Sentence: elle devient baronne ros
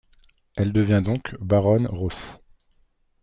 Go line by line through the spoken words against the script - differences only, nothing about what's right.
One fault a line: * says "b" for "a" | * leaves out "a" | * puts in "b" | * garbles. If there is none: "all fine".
* puts in "donc"